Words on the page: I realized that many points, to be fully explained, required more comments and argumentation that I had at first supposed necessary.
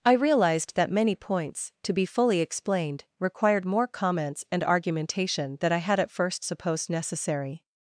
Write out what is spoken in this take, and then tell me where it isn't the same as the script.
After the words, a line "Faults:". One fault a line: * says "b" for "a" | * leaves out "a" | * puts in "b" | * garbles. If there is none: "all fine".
I realized that many points, to be fully explained, required more comments and argumentation than I had at first supposed necessary.
Faults:
* says "than" for "that"